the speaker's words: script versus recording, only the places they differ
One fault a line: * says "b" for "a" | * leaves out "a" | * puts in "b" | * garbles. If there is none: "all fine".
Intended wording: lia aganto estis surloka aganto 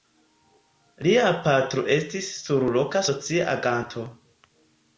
* says "patro" for "aganto"
* puts in "socia"